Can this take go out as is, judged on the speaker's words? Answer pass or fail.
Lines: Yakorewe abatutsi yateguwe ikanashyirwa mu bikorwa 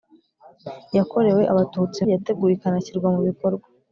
pass